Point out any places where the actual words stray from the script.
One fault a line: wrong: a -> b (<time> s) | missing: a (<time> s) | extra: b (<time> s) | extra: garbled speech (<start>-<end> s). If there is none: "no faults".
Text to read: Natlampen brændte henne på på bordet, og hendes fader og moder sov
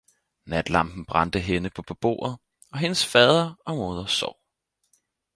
no faults